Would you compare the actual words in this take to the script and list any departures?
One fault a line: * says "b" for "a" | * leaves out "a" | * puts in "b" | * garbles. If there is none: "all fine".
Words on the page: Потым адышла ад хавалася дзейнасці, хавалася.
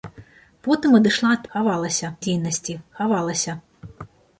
all fine